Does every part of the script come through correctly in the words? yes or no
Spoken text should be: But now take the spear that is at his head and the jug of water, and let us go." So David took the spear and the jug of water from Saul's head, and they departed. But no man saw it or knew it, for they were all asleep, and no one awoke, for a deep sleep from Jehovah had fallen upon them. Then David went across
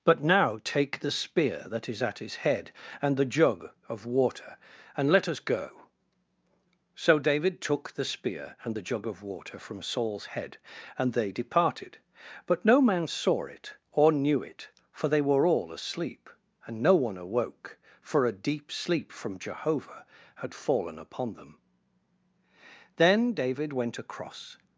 yes